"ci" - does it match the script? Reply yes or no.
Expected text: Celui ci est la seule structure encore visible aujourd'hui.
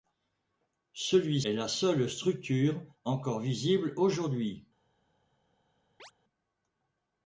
no